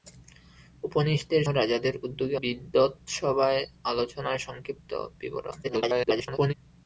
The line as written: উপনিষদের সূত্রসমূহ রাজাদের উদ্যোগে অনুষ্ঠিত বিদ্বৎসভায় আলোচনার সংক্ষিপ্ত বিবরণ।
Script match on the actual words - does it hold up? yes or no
no